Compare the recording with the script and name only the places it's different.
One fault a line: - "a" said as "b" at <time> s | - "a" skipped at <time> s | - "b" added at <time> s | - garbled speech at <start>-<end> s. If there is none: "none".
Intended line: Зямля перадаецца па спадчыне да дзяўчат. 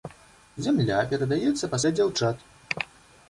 - "спадчыне" skipped at 1.8 s